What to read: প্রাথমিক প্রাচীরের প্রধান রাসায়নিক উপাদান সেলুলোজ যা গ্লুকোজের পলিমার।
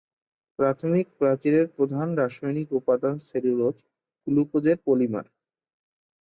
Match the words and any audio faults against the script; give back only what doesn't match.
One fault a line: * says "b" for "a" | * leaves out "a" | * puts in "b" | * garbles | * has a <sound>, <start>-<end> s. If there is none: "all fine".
* leaves out "যা"